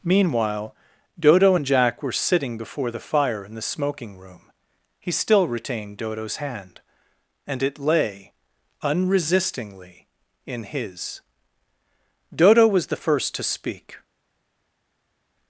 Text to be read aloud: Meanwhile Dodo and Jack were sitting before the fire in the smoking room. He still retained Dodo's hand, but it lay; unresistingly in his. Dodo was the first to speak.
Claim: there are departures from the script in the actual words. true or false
true